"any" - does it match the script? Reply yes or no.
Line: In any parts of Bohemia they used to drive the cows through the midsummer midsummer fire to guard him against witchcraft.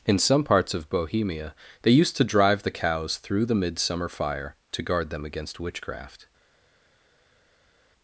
no